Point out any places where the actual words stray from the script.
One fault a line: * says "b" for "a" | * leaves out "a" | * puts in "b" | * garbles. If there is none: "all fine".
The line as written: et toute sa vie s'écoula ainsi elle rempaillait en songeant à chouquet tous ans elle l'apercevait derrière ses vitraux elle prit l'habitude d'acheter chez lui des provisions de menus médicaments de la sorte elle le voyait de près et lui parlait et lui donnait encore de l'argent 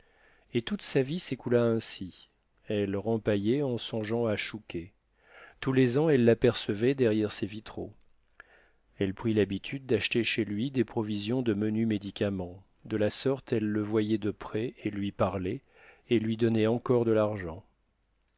* puts in "les"